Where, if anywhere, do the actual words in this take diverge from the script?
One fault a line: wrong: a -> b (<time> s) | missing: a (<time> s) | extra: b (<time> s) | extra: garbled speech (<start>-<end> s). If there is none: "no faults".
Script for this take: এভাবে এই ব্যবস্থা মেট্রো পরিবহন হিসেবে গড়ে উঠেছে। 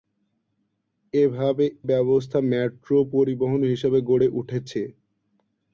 missing: এই (1.6 s)